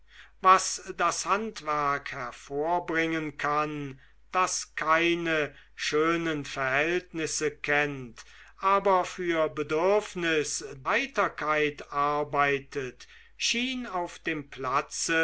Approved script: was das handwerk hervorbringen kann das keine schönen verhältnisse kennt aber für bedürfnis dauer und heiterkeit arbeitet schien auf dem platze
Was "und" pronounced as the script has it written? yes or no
no